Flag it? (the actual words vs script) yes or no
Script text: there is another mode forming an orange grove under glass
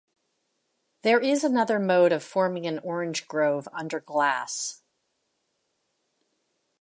yes